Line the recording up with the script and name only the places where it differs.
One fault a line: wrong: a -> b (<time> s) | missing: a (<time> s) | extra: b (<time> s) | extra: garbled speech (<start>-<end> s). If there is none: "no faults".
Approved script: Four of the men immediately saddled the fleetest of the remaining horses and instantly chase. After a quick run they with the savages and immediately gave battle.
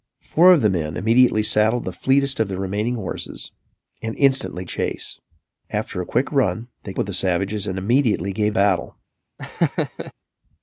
no faults